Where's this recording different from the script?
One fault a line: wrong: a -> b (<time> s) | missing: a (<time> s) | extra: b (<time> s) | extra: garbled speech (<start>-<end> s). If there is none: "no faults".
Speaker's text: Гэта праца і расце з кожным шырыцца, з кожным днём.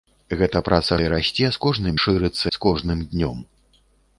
no faults